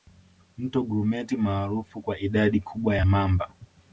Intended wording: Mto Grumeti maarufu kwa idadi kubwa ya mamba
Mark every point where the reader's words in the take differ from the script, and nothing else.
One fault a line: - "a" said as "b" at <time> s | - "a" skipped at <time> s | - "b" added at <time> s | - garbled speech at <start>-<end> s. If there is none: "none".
none